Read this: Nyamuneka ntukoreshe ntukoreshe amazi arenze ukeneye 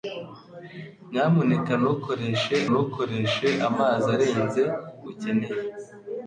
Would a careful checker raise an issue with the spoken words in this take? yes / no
no